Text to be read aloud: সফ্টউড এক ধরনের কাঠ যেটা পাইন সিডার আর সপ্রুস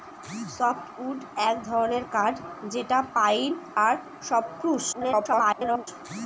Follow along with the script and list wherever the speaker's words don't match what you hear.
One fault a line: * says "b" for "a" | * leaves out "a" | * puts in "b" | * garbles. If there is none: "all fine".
* leaves out "সিডার"
* garbles